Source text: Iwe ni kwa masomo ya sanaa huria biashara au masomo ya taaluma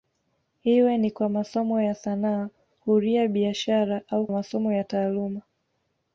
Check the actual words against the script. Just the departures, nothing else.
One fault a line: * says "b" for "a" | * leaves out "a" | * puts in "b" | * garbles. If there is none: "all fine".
all fine